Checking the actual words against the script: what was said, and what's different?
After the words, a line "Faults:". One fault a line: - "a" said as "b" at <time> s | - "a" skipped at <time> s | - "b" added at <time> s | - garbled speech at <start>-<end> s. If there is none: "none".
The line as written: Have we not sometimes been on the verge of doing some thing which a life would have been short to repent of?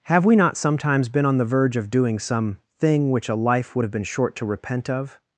Have we not sometimes been on the verge of doing some thing which a life would have been short to repent of?
Faults:
none